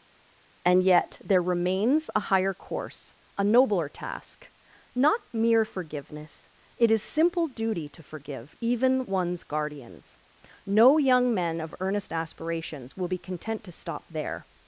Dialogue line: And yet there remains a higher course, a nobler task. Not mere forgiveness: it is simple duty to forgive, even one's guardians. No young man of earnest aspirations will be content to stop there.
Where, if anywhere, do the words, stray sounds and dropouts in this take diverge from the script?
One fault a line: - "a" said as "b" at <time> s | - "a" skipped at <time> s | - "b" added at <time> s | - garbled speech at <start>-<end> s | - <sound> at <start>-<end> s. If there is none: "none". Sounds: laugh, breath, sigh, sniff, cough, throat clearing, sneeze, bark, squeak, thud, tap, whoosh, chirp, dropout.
- "man" said as "men" at 11.3 s